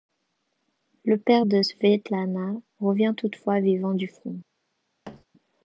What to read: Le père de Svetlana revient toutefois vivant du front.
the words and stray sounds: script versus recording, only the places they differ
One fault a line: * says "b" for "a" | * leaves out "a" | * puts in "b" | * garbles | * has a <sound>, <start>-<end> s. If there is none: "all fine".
* has a thud, 5.0-5.2 s